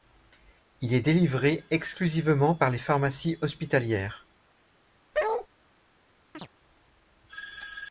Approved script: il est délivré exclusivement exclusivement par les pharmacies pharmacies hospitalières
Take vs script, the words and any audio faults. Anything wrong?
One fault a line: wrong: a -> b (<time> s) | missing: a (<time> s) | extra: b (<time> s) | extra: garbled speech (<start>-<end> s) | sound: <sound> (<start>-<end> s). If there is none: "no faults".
missing: exclusivement (2.5 s)
missing: pharmacies (3.4 s)
sound: bark (5.1-5.5 s)
sound: chirp (6.3-6.5 s)